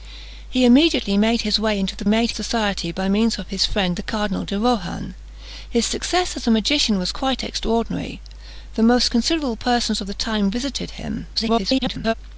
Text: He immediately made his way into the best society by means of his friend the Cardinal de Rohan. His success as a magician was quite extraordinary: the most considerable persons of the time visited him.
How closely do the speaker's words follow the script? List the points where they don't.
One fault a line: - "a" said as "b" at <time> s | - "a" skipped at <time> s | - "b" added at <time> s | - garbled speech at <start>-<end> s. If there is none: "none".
- "best" said as "made" at 2.0 s
- garbled speech at 11.3-12.1 s